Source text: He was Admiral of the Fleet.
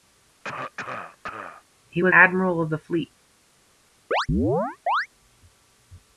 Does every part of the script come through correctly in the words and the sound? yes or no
no